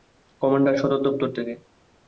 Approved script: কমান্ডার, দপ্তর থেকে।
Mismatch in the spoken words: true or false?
true